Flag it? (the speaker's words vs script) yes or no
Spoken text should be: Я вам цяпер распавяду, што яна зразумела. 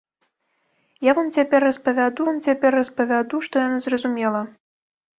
yes